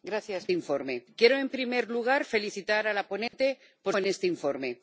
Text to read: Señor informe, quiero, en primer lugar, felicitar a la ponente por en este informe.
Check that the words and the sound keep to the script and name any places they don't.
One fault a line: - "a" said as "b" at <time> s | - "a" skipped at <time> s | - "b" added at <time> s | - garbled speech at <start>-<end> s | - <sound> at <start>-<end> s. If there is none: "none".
- dropout at 3.3-3.3 s